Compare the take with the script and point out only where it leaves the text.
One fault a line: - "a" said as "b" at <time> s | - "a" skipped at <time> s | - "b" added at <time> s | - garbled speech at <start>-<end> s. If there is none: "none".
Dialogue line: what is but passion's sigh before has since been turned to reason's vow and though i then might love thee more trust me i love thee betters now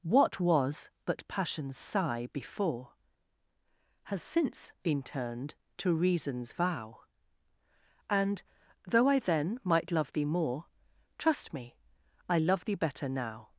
- "is" said as "was" at 0.4 s
- "betters" said as "better" at 12.8 s